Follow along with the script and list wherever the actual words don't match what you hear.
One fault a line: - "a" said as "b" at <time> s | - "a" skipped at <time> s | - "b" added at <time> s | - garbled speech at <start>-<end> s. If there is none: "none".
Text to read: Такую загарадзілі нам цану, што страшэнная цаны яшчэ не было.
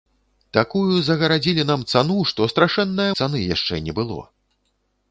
none